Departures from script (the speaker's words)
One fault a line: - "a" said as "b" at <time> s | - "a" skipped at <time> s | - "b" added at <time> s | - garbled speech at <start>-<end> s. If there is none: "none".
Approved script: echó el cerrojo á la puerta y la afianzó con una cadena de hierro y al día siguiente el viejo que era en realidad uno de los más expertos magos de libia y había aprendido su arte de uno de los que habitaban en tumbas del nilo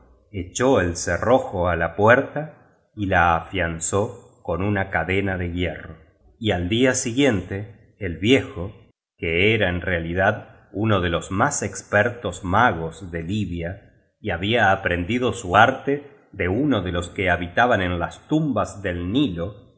- "las" added at 18.0 s